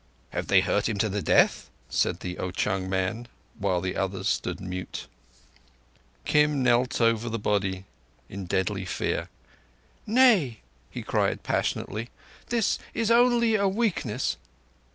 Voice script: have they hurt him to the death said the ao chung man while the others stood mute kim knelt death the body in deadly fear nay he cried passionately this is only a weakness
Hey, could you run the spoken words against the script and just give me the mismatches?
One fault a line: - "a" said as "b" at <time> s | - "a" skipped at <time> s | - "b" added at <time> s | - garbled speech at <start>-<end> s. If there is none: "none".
- "death" said as "over" at 7.0 s